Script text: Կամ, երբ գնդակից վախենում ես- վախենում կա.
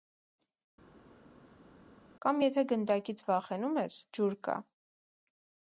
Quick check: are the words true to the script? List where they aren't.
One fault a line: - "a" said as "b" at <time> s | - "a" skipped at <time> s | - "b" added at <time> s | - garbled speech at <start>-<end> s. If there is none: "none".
- "երբ" said as "եթե" at 2.5 s
- "վախենում" said as "ջուր" at 4.2 s